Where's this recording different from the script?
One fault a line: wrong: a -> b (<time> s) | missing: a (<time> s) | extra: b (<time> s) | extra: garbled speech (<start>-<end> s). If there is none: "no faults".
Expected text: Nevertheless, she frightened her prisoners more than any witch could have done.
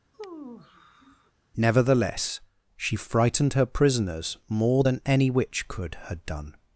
wrong: have -> had (6.1 s)